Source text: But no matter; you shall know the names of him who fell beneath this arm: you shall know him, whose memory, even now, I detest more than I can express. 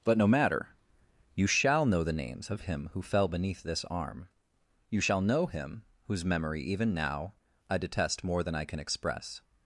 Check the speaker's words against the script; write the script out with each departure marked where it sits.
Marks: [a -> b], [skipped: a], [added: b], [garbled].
But no matter; you shall know the names of him who fell beneath this arm: you shall know him, whose memory, even now, I detest more than I can express.